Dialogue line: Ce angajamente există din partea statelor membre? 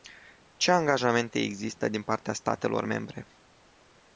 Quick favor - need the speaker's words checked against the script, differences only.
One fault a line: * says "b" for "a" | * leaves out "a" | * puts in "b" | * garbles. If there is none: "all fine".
all fine